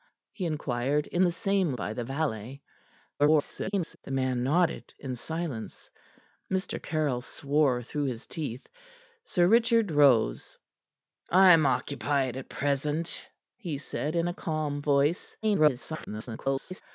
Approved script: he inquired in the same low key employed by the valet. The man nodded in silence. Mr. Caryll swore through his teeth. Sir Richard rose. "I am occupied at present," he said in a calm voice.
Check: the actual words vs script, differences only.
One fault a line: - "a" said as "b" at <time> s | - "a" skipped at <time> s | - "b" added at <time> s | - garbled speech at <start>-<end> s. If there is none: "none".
- "low key employed" skipped at 1.7 s
- garbled speech at 3.2-4.0 s
- garbled speech at 15.4-16.8 s